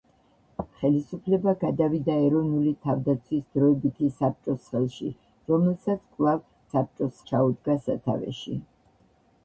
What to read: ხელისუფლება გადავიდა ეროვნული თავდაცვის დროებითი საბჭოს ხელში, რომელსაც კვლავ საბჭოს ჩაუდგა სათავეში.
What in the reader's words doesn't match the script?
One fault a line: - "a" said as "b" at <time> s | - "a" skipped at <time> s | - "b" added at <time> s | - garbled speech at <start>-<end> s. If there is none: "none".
none